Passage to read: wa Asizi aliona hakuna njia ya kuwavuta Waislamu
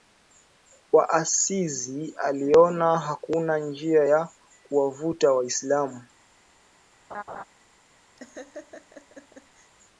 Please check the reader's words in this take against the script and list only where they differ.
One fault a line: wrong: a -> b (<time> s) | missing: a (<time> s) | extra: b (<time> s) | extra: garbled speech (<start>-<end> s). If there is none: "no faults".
no faults